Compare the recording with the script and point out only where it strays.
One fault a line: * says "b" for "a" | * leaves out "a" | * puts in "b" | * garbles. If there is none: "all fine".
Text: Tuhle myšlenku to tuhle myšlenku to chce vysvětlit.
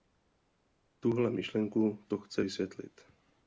* leaves out "tuhle myšlenku to"